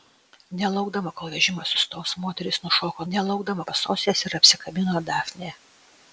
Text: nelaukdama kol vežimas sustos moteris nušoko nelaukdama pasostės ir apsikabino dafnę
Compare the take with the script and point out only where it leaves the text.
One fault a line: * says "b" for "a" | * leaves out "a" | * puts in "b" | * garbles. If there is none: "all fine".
all fine